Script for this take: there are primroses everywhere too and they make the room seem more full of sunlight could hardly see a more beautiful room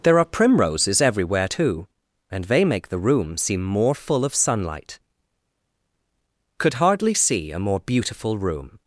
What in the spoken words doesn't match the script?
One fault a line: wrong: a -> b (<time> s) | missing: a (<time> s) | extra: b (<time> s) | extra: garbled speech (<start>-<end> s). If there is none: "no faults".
no faults